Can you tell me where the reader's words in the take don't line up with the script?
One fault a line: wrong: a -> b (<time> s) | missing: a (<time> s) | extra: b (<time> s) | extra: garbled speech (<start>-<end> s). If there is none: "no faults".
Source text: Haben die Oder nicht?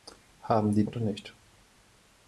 no faults